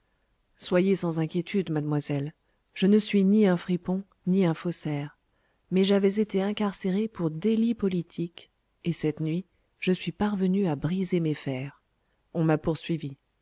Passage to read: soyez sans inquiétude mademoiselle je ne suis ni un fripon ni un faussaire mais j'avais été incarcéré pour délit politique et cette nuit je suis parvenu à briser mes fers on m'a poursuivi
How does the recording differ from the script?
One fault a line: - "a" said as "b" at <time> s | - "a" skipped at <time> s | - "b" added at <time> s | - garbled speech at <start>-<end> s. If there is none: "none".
none